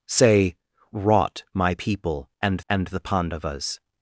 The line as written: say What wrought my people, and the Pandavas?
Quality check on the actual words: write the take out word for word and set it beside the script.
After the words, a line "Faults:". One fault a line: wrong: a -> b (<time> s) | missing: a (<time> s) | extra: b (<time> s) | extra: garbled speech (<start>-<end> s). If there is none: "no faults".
say Wrought my people, and and the Pandavas?
Faults:
missing: What (0.6 s)
extra: and (2.7 s)